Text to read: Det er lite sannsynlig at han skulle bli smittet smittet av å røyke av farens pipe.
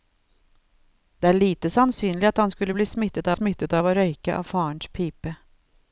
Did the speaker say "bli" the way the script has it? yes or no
yes